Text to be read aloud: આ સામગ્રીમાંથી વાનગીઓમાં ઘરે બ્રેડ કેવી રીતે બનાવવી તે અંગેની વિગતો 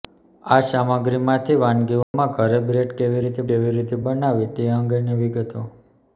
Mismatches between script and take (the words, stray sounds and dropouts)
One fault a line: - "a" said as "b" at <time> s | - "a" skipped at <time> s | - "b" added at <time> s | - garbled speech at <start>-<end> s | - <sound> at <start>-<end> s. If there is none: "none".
- dropout at 2.0-2.1 s
- "કેવી રીતે" added at 3.5 s